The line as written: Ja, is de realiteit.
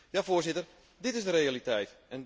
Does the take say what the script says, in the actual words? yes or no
no